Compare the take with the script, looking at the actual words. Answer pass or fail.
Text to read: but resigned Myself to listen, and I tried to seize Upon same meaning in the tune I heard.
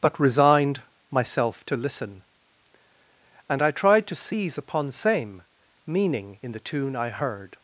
pass